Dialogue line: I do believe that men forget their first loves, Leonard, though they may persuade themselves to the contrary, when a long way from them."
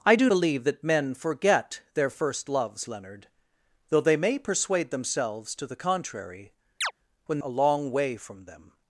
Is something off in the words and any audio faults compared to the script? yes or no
yes